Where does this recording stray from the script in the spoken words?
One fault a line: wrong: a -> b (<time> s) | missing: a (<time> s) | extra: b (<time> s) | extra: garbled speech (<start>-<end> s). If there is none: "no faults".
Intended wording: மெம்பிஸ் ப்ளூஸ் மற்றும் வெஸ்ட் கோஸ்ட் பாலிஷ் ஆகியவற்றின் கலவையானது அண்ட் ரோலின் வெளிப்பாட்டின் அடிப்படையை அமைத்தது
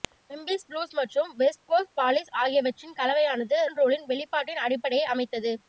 no faults